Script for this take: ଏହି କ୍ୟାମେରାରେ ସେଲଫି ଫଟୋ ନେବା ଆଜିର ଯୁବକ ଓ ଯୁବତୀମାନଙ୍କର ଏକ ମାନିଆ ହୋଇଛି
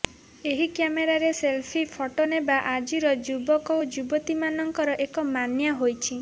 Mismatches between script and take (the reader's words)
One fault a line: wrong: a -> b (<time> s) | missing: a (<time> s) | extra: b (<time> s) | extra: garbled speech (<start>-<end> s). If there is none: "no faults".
no faults